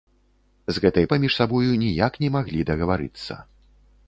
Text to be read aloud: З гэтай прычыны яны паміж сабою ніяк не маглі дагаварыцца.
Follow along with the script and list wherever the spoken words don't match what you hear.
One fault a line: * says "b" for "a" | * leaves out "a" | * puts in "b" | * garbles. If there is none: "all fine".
* leaves out "прычыны яны"